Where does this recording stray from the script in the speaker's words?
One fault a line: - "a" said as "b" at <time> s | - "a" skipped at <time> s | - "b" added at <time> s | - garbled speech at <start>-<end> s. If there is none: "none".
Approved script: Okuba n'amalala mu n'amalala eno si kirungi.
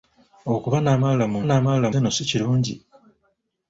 none